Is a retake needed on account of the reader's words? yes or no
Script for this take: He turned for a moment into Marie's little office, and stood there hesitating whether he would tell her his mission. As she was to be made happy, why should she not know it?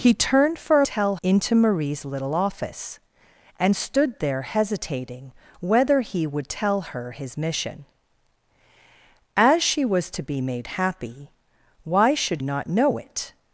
yes